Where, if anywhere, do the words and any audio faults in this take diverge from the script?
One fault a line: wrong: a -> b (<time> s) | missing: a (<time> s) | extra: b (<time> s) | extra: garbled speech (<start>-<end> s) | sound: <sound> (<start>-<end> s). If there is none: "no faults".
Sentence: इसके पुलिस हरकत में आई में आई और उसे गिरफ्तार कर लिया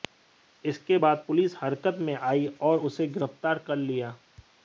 extra: बाद (1.0 s)
missing: में आई (2.5 s)